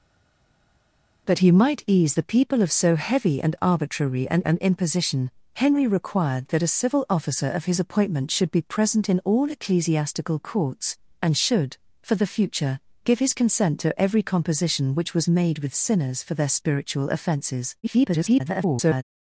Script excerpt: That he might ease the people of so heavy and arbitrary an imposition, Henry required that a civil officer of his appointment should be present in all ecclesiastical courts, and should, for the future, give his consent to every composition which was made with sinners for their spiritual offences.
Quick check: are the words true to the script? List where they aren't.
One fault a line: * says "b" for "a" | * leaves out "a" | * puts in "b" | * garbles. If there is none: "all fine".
* puts in "an"
* garbles